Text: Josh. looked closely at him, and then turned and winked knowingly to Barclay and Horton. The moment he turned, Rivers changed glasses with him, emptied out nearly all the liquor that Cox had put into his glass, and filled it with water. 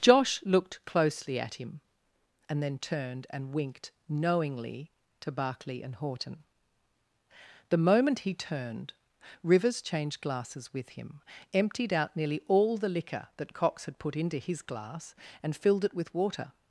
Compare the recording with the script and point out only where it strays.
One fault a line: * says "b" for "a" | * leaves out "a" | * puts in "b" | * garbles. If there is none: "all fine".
all fine